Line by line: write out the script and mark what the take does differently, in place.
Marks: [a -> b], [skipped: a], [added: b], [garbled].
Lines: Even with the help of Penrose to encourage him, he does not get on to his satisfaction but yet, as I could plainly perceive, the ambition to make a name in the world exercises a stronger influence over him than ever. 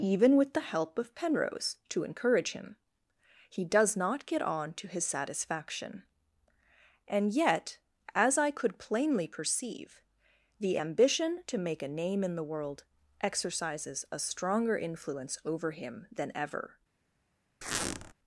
Even with the help of Penrose to encourage him, he does not get on to his satisfaction [but -> and] yet, as I could plainly perceive, the ambition to make a name in the world exercises a stronger influence over him than ever.